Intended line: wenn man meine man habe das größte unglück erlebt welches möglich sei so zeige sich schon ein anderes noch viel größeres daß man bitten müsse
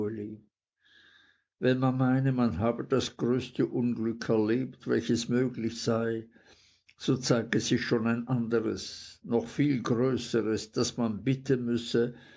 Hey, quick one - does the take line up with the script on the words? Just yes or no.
yes